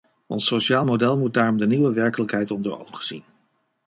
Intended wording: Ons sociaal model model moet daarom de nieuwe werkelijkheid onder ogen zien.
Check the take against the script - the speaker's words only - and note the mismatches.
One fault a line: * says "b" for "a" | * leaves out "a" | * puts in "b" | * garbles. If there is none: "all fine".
* leaves out "model"